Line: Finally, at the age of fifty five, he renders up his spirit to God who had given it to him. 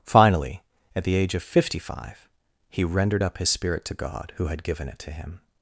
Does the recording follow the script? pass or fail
fail